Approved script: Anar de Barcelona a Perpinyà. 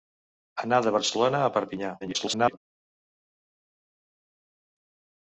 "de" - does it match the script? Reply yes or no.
yes